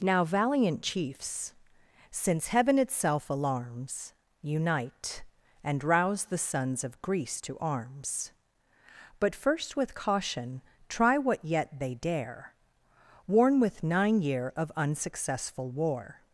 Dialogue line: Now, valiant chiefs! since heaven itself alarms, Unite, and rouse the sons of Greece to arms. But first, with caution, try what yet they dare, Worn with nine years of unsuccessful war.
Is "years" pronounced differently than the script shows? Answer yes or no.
yes